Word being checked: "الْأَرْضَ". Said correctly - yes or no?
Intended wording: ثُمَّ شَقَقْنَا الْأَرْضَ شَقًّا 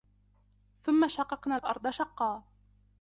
yes